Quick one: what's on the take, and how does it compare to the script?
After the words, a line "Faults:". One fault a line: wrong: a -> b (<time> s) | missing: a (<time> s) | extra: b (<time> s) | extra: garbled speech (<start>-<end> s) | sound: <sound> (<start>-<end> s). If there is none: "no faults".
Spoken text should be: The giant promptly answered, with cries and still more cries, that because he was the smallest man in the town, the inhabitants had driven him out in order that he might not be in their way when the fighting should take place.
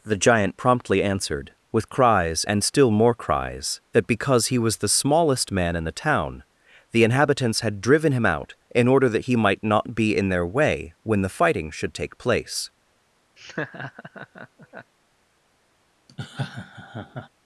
The giant promptly answered, with cries and still more cries, that because he was the smallest man in the town, the inhabitants had driven him out in order that he might not be in their way when the fighting should take place.
Faults:
sound: laugh (13.4-14.9 s)
sound: laugh (16.1-17.3 s)